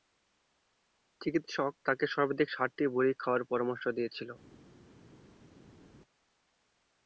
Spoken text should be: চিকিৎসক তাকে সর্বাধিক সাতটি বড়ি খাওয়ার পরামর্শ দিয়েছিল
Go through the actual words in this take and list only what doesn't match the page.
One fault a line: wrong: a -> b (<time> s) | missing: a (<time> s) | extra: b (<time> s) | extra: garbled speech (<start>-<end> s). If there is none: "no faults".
no faults